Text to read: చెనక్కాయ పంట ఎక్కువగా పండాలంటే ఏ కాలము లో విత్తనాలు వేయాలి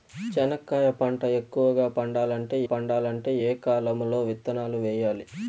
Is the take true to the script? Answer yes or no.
no